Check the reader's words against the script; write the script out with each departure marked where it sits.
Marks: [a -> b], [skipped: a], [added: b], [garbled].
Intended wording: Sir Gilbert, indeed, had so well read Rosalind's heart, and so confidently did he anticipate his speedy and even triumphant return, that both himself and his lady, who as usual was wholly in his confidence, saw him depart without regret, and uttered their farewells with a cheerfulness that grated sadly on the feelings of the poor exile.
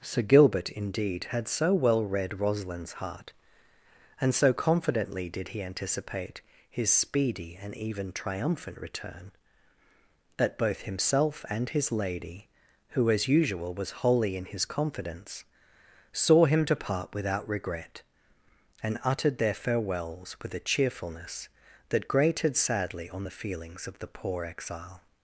Sir Gilbert, indeed, had so well read Rosalind's heart, and so confidently did he anticipate his speedy and even triumphant return, that both himself and his lady, who as usual was wholly in his confidence, saw him depart without regret, and uttered their farewells with a cheerfulness that grated sadly on the feelings of the poor exile.